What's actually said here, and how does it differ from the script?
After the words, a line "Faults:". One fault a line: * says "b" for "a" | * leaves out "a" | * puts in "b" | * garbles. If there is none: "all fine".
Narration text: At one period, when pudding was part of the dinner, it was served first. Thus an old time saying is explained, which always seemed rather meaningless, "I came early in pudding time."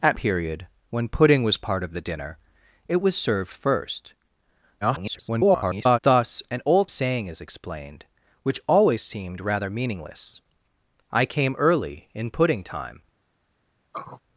At period, when pudding was part of the dinner, it was served first. [garbled] Thus an old saying is explained, which always seemed rather meaningless, "I came early in pudding time."
Faults:
* leaves out "one"
* garbles
* leaves out "time"